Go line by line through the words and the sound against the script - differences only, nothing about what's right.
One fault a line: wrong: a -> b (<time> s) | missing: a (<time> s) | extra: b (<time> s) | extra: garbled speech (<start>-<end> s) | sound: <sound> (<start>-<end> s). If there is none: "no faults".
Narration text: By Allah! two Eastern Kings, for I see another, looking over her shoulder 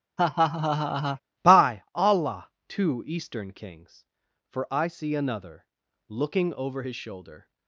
sound: laugh (0.2-1.2 s)
wrong: her -> his (6.8 s)